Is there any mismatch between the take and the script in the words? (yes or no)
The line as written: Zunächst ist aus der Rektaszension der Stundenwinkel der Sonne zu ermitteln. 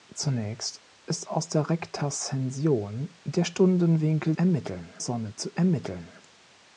yes